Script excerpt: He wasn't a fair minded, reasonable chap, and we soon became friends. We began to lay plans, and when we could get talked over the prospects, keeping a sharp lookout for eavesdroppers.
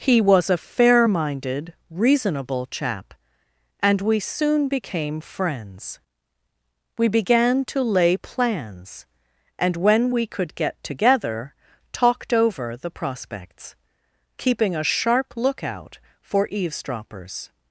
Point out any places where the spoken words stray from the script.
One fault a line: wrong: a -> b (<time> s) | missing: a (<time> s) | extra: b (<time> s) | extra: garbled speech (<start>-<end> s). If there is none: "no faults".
wrong: wasn't -> was (0.2 s)
extra: together (10.8 s)